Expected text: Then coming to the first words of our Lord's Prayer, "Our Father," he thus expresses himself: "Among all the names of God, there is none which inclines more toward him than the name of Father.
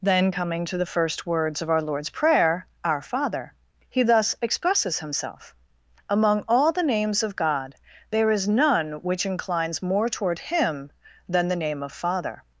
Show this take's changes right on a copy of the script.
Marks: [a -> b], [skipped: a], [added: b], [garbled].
Then coming to the first words of our Lord's Prayer, "Our Father," he thus expresses himself: "Among all the names of God, there is none which inclines more toward him than the name of Father.